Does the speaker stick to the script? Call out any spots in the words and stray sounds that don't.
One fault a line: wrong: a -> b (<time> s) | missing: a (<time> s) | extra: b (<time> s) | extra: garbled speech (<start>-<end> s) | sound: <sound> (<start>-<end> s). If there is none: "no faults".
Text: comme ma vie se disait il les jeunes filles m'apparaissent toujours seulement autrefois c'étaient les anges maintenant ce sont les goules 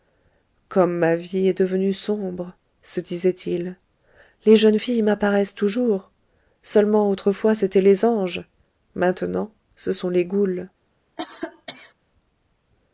extra: est devenue sombre (1.5 s)
sound: cough (11.2-11.9 s)